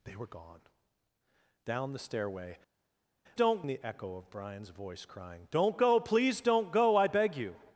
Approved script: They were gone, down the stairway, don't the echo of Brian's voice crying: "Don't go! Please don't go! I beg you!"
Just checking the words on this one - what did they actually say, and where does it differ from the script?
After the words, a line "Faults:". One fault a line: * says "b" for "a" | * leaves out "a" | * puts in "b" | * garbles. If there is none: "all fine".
They were gone, down the stairway, don't the echo of Brian's voice crying: "Don't go! Please don't go! I beg you!"
Faults:
all fine